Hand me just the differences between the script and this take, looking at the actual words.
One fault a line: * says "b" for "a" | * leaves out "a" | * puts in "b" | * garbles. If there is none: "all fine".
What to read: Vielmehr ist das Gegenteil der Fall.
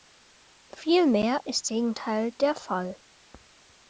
* leaves out "das"